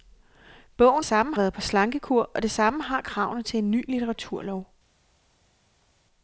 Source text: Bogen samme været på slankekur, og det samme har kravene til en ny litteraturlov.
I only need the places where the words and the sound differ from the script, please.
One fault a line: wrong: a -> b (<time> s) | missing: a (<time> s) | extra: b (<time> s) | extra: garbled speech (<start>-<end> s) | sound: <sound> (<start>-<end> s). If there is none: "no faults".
no faults